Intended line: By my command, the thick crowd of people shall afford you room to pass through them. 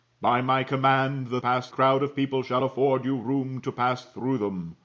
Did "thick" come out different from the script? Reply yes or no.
yes